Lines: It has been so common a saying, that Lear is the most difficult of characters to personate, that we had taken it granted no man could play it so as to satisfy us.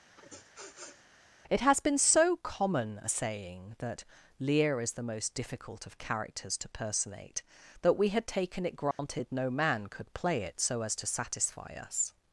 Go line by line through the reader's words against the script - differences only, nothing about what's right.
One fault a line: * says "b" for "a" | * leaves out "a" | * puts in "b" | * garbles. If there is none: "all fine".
all fine